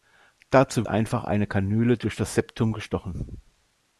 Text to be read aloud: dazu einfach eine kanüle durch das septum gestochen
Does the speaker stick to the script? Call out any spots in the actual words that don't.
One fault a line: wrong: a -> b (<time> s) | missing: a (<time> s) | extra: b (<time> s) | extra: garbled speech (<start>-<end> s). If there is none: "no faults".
no faults